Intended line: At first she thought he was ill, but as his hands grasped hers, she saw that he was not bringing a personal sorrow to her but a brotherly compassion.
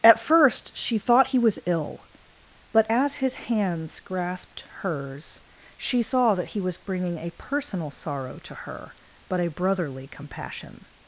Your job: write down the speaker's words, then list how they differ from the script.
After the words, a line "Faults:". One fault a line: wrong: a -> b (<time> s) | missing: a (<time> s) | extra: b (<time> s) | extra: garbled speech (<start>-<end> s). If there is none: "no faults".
At first she thought he was ill, but as his hands grasped hers, she saw that he was bringing a personal sorrow to her but a brotherly compassion.
Faults:
missing: not (6.8 s)